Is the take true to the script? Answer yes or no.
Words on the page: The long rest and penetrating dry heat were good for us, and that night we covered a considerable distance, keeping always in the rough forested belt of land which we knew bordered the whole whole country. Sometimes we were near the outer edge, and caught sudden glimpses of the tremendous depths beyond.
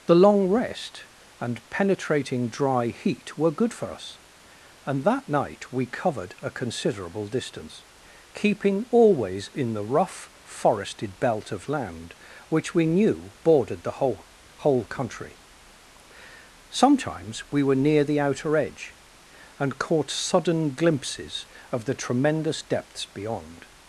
yes